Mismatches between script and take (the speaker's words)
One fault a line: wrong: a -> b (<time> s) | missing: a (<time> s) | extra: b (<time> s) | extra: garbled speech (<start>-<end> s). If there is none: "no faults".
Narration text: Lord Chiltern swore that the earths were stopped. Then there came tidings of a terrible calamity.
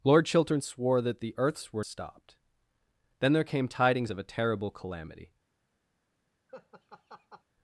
no faults